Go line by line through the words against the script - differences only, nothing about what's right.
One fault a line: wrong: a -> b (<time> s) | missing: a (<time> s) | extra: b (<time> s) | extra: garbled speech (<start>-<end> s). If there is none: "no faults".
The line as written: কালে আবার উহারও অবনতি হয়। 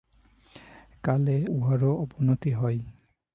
missing: আবার (1.4 s)